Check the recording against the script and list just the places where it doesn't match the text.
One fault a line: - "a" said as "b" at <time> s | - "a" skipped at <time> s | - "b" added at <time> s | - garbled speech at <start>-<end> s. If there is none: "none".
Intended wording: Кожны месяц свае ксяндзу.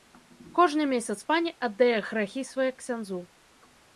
- "пані аддае грахі" added at 1.3 s